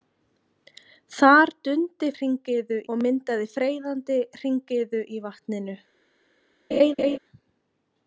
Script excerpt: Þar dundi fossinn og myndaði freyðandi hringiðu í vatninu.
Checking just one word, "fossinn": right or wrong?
wrong